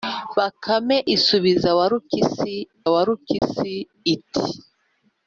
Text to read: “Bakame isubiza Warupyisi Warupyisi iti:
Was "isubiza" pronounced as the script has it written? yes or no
yes